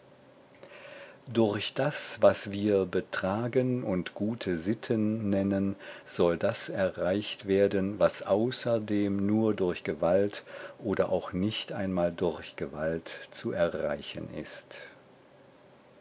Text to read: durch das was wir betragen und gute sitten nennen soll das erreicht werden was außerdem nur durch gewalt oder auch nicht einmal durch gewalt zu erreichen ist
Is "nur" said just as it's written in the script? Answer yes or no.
yes